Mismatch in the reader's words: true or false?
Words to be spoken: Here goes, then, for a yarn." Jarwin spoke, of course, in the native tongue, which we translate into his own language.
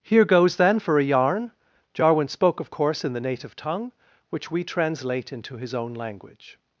false